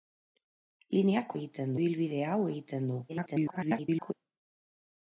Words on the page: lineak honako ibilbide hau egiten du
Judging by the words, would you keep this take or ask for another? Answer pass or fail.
fail